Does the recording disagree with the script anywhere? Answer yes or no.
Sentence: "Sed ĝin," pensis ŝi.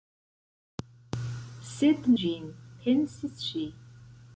no